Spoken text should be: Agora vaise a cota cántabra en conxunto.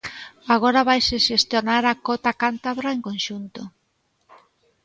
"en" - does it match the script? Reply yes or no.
yes